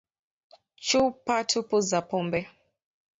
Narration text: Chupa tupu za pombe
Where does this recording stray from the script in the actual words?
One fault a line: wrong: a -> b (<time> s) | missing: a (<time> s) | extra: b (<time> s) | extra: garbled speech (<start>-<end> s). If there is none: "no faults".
no faults